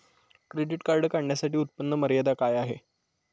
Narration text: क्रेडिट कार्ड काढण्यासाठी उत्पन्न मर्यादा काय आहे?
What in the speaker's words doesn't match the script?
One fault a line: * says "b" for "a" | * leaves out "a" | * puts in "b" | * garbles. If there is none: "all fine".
all fine